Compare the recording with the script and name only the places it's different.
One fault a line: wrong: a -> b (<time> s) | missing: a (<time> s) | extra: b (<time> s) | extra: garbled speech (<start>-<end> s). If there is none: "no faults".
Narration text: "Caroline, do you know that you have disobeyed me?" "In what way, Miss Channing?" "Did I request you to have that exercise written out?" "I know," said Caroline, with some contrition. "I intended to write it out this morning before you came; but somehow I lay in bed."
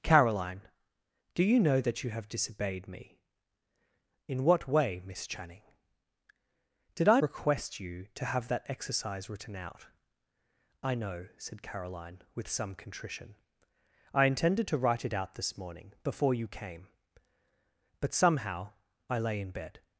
no faults